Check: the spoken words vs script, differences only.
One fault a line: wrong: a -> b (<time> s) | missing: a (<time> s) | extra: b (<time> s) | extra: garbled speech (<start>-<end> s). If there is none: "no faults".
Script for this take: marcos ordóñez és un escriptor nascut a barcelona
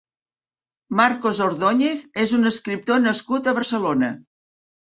no faults